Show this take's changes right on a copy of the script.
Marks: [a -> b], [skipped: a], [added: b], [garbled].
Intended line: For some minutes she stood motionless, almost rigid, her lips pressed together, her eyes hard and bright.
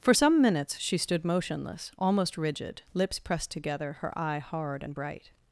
For some minutes she stood motionless, almost rigid, [skipped: her] lips pressed together, her [eyes -> eye] hard and bright.